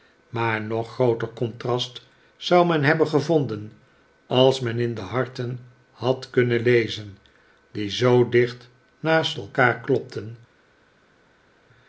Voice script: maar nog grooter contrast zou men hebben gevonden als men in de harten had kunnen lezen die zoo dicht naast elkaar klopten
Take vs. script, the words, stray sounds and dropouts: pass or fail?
pass